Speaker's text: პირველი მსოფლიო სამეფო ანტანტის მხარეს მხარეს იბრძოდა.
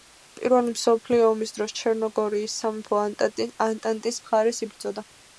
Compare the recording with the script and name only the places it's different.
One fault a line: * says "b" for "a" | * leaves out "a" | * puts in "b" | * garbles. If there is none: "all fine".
* puts in "ომის დროს ჩერნოგორიის"
* leaves out "მხარეს"